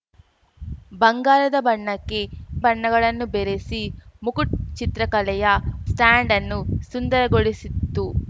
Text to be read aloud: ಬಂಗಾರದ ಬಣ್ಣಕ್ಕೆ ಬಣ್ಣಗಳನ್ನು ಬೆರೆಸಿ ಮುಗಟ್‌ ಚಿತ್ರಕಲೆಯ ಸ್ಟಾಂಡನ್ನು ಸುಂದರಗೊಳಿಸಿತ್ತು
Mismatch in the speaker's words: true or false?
false